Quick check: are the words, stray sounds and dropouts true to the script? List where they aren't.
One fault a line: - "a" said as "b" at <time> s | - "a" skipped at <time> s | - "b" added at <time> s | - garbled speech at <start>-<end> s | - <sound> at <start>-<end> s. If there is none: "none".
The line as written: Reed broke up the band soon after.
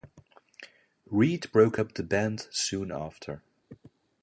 none